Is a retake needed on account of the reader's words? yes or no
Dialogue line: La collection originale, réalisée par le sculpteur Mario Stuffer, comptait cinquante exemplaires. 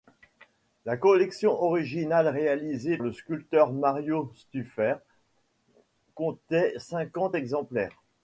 yes